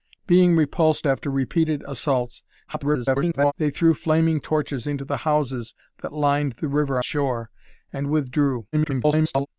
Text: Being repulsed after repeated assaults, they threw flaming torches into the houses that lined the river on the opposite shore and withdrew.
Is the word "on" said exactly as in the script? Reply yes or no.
no